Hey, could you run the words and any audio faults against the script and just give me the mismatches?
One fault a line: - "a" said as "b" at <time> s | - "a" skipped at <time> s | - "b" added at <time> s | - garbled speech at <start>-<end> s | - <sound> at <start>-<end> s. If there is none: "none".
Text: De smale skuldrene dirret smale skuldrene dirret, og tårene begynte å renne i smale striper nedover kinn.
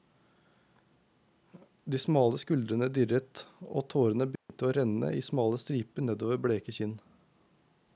- "smale skuldrene dirret" skipped at 3.5 s
- dropout at 4.4-4.5 s
- "bleke" added at 6.5 s